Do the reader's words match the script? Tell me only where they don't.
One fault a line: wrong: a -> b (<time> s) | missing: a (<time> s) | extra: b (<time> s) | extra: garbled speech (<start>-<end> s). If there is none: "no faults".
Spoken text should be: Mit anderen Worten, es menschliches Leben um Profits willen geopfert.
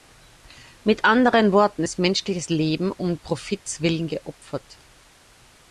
no faults